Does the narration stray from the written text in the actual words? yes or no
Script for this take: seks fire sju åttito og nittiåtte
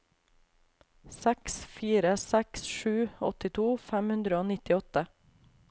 yes